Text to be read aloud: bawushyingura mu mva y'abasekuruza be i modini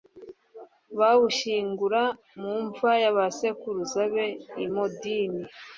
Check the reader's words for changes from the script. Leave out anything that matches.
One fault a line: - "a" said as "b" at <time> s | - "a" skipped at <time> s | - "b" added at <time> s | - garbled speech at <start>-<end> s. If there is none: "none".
none